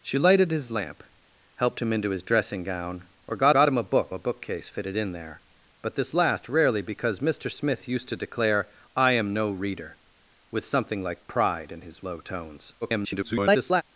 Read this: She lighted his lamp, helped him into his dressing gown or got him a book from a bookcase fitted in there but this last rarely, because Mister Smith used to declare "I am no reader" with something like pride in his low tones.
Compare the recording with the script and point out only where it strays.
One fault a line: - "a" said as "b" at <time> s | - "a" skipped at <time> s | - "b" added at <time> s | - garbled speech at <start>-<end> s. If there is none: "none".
- "got" added at 3.5 s
- "from" skipped at 4.1 s
- garbled speech at 12.8-13.8 s